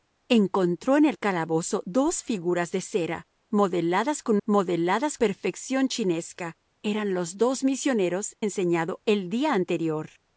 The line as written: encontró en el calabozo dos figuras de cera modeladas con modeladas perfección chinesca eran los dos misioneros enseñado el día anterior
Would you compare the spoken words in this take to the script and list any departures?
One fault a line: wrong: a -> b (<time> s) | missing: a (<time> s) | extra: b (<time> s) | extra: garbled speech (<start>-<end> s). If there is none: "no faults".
no faults